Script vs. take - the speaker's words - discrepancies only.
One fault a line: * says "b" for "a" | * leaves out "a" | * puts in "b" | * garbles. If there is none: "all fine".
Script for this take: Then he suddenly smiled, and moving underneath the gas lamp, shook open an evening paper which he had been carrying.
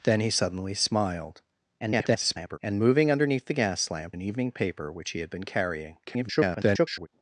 * garbles
* leaves out "shook open"
* garbles